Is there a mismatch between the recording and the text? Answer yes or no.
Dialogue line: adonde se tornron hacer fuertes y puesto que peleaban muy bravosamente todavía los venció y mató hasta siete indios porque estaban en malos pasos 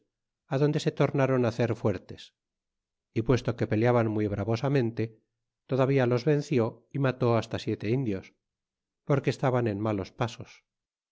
no